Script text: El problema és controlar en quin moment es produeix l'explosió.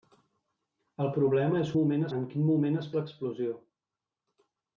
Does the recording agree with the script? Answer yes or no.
no